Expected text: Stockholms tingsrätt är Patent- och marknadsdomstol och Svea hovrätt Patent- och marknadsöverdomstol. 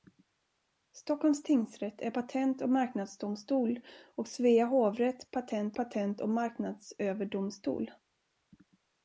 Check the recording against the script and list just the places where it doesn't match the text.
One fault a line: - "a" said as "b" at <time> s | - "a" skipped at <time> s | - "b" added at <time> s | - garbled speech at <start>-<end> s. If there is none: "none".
- "Patent" added at 5.7 s